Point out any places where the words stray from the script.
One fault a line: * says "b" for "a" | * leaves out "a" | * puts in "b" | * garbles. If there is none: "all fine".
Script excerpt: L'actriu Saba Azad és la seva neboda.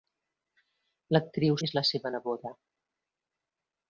* leaves out "Saba Azad"